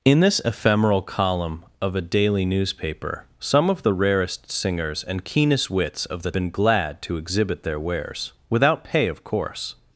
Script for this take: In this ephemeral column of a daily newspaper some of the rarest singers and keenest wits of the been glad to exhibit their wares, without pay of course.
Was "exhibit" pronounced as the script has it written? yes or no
yes